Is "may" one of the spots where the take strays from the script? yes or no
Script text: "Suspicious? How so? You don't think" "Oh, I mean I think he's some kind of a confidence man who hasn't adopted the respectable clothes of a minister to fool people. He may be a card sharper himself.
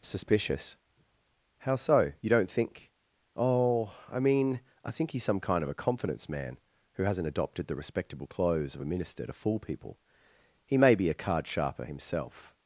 no